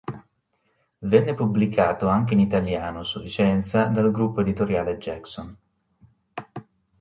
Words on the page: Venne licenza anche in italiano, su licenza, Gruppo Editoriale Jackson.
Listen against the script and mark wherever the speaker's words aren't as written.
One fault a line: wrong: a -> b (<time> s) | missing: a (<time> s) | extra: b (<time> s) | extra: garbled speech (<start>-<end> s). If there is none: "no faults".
wrong: licenza -> pubblicato (1.4 s)
extra: dal (3.9 s)